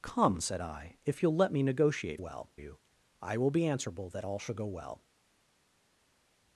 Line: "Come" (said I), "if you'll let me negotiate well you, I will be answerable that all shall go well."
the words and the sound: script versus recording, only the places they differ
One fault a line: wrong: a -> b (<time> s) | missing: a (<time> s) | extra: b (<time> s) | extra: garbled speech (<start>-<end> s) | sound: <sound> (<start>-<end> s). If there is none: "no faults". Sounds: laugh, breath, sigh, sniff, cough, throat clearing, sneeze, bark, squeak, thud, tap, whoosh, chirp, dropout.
no faults